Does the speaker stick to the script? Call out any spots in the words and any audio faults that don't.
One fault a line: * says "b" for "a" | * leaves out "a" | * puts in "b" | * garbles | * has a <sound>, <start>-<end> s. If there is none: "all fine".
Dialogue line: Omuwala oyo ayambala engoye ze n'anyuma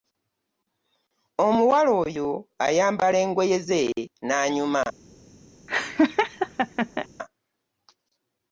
* has a laugh, 5.7-7.1 s